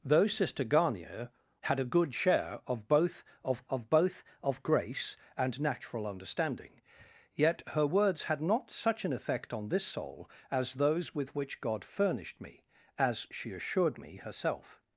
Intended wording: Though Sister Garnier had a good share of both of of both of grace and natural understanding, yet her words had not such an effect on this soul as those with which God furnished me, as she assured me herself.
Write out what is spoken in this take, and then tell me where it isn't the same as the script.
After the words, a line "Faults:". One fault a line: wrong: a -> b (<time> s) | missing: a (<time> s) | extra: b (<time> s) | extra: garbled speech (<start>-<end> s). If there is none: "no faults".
Though Sister Garnier had a good share of both of of both of grace and natural understanding, yet her words had not such an effect on this soul as those with which God furnished me, as she assured me herself.
Faults:
no faults